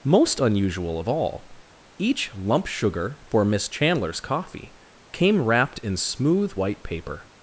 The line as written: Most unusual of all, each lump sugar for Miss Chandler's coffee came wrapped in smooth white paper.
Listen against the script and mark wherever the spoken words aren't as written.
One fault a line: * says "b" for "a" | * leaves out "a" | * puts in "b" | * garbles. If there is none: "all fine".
all fine